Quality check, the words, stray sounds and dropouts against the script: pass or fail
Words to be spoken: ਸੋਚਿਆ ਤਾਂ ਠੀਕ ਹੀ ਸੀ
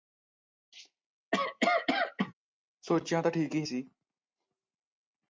fail